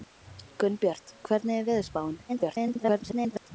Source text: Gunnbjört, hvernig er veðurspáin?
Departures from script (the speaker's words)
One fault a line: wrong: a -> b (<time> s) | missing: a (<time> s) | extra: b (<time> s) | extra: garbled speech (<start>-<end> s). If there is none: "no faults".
extra: garbled speech (2.3-3.5 s)